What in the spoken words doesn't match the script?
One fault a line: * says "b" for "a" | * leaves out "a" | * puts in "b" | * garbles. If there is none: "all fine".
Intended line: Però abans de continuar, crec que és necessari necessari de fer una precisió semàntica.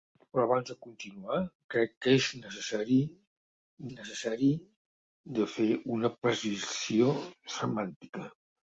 all fine